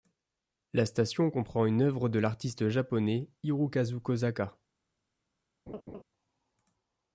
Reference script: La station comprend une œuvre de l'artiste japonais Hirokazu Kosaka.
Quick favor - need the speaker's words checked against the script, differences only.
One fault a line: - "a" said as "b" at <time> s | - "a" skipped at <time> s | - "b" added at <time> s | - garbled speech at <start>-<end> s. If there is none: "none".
none